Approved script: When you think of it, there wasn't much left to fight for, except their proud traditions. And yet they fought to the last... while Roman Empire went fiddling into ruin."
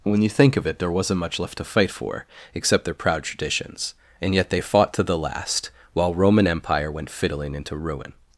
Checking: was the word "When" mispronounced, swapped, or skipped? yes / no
no